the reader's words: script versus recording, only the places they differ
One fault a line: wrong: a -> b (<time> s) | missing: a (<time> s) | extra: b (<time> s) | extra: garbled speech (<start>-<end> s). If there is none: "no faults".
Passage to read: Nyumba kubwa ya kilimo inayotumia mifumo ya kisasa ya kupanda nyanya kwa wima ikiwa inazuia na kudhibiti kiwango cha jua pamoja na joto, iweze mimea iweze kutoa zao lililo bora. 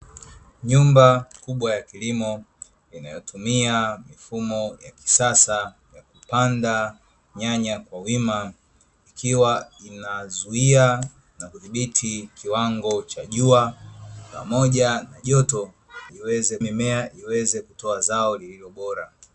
no faults